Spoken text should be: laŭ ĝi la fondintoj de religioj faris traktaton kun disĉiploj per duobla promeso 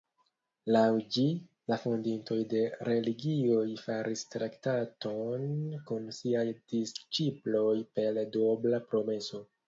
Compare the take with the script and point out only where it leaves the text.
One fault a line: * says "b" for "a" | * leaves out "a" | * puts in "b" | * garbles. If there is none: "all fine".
* puts in "siaj"